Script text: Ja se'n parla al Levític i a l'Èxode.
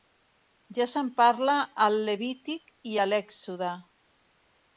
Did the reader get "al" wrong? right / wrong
right